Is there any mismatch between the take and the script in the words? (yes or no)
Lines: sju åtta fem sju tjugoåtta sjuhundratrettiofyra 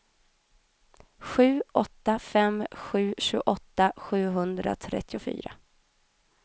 no